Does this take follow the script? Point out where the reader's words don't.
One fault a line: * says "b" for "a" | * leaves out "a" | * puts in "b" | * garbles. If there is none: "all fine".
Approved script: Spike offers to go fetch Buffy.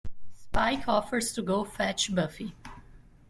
all fine